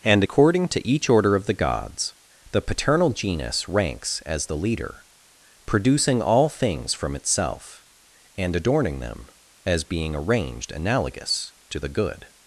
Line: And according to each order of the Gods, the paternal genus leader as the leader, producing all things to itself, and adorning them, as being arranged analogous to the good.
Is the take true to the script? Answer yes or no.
no